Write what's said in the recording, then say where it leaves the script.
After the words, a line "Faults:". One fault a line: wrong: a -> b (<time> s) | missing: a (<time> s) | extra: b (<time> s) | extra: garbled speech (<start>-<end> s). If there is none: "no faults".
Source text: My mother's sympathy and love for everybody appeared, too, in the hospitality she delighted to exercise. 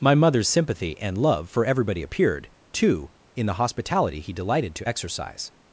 My mother's sympathy and love for everybody appeared, too, in the hospitality he delighted to exercise.
Faults:
wrong: she -> he (4.2 s)